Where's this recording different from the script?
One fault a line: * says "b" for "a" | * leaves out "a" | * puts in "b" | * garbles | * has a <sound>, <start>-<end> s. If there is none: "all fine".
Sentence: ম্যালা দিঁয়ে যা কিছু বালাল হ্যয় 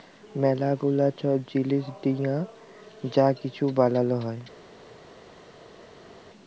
* puts in "গুলা ছব জিলিস"